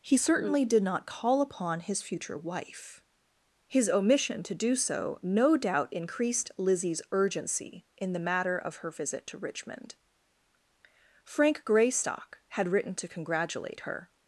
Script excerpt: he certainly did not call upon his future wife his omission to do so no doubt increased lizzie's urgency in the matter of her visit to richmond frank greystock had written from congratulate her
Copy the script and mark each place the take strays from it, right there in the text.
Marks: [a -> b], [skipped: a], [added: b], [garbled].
he certainly did not call upon his future wife his omission to do so no doubt increased lizzie's urgency in the matter of her visit to richmond frank greystock had written [from -> to] congratulate her